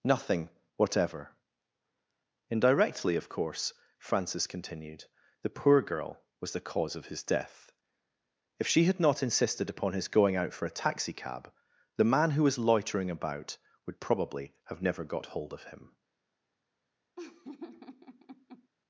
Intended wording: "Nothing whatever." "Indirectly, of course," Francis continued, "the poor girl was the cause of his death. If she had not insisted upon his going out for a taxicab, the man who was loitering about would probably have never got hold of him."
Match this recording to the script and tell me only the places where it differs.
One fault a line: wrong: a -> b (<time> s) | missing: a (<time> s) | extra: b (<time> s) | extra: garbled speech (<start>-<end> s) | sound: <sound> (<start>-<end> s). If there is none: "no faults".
sound: laugh (17.2-18.7 s)